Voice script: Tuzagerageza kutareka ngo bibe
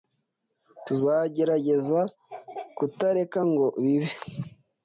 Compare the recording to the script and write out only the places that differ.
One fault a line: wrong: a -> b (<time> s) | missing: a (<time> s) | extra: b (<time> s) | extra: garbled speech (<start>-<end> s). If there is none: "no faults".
no faults